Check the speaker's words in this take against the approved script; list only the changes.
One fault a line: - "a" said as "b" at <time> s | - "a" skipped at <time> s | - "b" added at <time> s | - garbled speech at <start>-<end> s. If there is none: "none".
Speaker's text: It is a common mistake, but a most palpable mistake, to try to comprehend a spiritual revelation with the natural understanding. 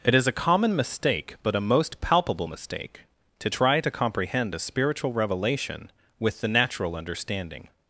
none